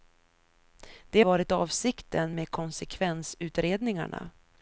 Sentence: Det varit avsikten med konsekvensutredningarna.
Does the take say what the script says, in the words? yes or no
yes